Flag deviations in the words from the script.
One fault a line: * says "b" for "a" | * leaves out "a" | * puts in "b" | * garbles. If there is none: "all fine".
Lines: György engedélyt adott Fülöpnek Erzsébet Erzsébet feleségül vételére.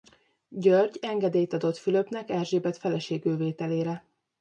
* leaves out "Erzsébet"